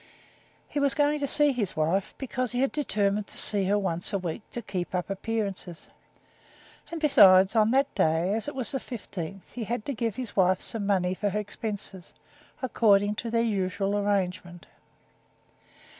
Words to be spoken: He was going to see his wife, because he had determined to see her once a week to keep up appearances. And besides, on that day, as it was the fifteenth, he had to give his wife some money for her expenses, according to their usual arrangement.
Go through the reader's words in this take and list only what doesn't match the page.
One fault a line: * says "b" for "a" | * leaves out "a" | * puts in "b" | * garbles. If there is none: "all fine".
all fine